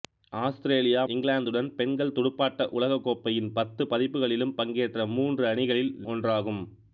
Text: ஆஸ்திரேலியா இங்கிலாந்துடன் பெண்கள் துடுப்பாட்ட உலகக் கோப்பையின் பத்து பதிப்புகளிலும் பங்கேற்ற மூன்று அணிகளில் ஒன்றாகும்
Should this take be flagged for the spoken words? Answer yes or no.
no